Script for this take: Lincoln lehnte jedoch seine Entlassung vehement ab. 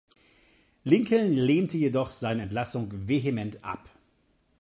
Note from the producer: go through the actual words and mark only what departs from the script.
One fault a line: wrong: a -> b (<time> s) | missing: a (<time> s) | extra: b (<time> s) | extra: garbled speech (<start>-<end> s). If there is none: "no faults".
no faults